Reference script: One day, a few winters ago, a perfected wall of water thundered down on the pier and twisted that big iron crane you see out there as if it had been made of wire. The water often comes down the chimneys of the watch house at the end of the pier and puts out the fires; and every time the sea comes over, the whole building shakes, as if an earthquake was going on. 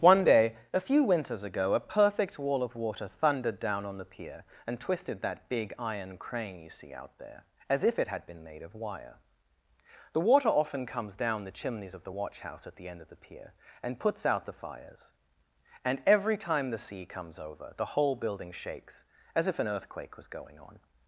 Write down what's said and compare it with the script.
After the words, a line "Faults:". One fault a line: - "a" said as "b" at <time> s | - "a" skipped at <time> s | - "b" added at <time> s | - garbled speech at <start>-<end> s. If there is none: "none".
One day, a few winters ago, a perfect wall of water thundered down on the pier and twisted that big iron crane you see out there as if it had been made of wire. The water often comes down the chimneys of the watch house at the end of the pier and puts out the fires; and every time the sea comes over, the whole building shakes, as if an earthquake was going on.
Faults:
- "perfected" said as "perfect" at 1.9 s